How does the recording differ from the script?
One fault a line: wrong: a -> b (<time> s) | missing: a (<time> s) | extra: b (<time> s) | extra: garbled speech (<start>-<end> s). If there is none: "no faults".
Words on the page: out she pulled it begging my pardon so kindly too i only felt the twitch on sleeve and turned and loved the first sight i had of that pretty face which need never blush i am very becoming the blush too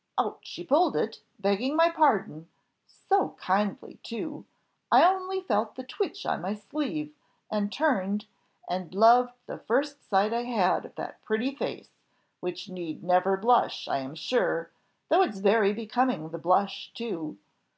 extra: my (6.4 s)
extra: sure though it's (14.2 s)